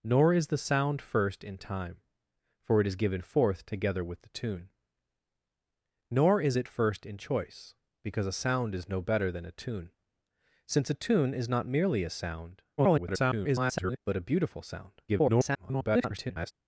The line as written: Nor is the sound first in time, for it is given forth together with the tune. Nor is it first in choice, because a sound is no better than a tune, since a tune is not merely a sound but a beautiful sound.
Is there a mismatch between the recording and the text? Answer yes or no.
yes